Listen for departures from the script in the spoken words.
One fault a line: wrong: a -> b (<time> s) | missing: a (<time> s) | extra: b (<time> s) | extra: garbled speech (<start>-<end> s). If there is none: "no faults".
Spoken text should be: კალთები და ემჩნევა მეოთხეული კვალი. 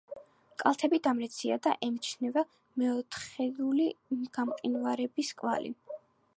extra: დამრეცია (1.1 s)
extra: გამყინვარების (4.4 s)